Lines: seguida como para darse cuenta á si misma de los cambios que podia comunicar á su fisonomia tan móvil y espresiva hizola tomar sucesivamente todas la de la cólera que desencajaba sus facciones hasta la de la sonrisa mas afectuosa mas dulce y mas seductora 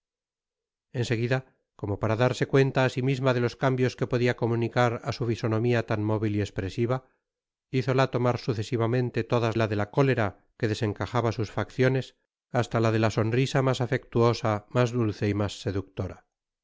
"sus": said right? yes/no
yes